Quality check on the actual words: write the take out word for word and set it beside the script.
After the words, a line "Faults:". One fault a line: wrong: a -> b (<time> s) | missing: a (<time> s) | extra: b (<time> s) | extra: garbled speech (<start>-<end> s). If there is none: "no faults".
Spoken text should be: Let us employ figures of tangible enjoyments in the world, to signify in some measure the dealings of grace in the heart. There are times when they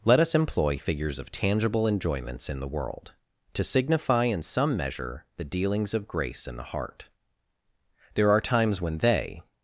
Let us employ figures of tangible enjoyments in the world, to signify in some measure the dealings of grace in the heart. There are times when they
Faults:
no faults